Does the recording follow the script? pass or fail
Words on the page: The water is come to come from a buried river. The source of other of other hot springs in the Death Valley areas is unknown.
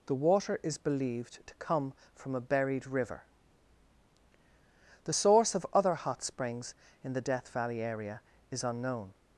fail